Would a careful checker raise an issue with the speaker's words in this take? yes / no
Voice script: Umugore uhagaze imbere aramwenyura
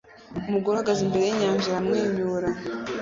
yes